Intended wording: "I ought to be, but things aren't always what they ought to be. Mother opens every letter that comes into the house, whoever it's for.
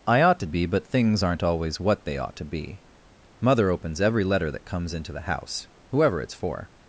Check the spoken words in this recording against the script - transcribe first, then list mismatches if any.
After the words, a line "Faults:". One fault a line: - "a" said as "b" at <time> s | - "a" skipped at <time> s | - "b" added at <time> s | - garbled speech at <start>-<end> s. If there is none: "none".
"I ought to be, but things aren't always what they ought to be. Mother opens every letter that comes into the house, whoever it's for.
Faults:
none